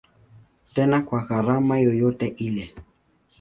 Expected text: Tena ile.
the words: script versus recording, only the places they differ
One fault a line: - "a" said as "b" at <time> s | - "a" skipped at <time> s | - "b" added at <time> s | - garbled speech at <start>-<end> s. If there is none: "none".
- "kwa gharama yoyote" added at 1.0 s